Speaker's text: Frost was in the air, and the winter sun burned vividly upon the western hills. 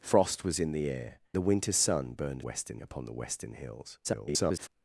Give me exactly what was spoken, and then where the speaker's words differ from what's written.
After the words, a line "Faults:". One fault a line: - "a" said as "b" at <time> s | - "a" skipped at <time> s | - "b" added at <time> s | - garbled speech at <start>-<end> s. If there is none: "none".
Frost was in the air, the winter sun burned western upon the western hills. [garbled]
Faults:
- "and" skipped at 1.2 s
- "vividly" said as "western" at 2.4 s
- garbled speech at 4.0-4.7 s